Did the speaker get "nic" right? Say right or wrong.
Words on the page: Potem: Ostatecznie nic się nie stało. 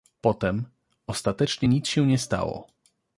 right